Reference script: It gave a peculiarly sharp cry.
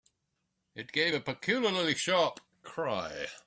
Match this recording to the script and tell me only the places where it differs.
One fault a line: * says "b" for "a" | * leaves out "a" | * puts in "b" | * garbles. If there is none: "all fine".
all fine